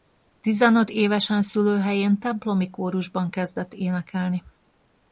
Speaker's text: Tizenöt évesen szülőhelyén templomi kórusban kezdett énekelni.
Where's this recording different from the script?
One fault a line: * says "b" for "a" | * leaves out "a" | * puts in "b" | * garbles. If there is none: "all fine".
all fine